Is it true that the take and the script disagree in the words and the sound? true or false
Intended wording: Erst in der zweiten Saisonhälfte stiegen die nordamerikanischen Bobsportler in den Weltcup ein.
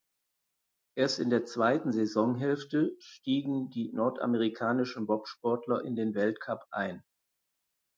false